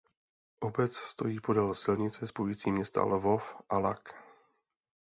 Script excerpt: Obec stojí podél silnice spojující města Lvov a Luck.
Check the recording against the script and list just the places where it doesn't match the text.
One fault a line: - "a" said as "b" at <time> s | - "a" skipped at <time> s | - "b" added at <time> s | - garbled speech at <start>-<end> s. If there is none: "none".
none